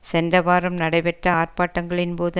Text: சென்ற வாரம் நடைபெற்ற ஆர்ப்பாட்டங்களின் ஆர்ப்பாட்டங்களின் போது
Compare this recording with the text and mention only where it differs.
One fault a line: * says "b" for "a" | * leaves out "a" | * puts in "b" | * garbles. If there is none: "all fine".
* leaves out "ஆர்ப்பாட்டங்களின்"